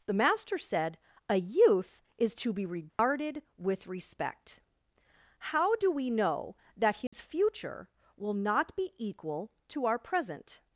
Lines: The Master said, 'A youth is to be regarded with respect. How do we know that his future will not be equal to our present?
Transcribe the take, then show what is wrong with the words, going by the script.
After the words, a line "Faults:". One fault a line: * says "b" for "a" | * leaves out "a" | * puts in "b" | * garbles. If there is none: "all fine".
The Master said, 'A youth is to be regarded with respect. How do we know that his future will not be equal to our present?
Faults:
all fine